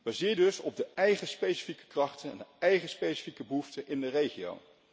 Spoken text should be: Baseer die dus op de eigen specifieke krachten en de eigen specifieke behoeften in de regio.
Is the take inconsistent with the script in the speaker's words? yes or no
yes